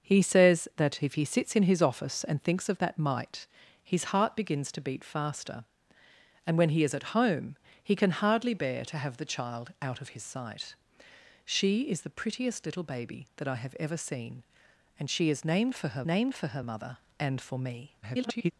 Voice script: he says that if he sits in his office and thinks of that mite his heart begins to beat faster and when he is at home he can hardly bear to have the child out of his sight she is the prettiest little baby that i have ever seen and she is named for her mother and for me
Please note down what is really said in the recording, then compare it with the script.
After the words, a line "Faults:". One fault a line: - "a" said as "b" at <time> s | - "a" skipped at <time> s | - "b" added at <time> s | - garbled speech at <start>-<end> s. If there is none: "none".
he says that if he sits in his office and thinks of that mite his heart begins to beat faster and when he is at home he can hardly bear to have the child out of his sight she is the prettiest little baby that i have ever seen and she is named for her named for her mother and for me [garbled]
Faults:
- "named for her" added at 16.1 s
- garbled speech at 18.0-18.5 s